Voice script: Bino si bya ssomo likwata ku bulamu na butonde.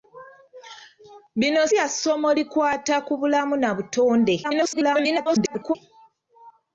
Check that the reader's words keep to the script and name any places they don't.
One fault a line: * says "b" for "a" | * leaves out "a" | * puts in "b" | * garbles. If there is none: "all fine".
* leaves out "si"
* garbles